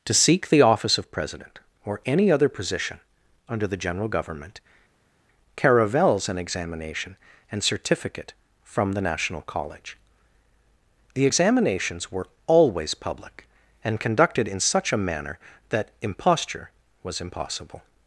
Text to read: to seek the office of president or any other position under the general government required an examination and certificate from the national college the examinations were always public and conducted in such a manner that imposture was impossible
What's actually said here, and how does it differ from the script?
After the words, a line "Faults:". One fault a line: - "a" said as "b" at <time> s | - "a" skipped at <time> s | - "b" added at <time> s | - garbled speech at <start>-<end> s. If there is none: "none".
to seek the office of president or any other position under the general government caravels an examination and certificate from the national college the examinations were always public and conducted in such a manner that imposture was impossible
Faults:
- "required" said as "caravels" at 5.5 s